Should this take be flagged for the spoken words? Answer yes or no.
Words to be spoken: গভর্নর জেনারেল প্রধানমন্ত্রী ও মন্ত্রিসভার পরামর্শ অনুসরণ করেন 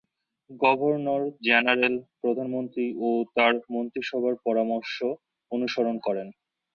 yes